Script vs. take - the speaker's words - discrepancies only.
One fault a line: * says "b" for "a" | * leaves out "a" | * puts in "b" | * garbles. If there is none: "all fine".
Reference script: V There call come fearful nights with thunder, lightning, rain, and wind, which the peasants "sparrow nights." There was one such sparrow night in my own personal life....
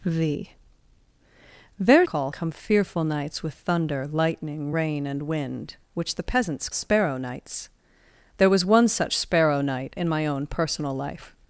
all fine